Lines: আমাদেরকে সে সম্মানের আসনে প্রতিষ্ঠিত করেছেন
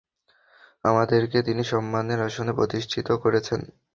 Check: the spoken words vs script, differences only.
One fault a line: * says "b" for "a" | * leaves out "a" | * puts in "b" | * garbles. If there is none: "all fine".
* says "তিনি" for "সে"